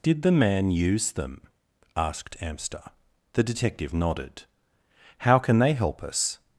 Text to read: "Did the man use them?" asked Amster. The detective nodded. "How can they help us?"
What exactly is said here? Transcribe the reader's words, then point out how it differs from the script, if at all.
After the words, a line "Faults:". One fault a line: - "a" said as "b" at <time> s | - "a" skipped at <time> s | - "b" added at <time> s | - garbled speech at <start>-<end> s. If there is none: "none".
"Did the man use them?" asked Amster. The detective nodded. "How can they help us?"
Faults:
none